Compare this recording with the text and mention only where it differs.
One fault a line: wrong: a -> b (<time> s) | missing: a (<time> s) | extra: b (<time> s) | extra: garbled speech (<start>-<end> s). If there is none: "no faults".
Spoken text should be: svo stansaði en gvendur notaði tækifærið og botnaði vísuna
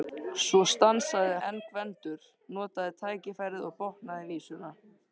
no faults